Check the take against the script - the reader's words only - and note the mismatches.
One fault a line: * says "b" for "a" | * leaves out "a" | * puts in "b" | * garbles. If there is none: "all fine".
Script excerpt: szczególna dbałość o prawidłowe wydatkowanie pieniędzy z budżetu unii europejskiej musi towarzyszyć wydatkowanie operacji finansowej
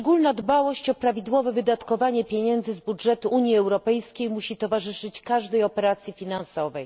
* says "każdej" for "wydatkowanie"